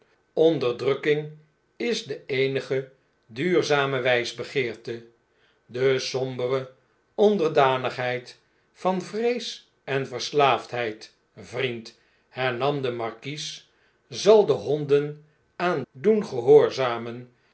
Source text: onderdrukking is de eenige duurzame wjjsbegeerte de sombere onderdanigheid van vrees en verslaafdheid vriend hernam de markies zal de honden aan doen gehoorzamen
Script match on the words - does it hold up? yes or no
yes